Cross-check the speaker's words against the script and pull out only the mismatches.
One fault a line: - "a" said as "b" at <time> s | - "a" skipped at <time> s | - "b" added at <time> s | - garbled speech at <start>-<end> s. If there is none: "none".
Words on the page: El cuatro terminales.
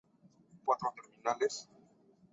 none